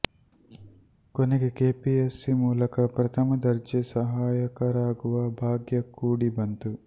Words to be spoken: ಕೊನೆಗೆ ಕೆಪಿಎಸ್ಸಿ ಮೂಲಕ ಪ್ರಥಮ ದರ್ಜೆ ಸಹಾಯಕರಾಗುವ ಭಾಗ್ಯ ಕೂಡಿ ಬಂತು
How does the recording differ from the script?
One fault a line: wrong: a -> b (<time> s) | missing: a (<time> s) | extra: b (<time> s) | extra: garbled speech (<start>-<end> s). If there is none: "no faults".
no faults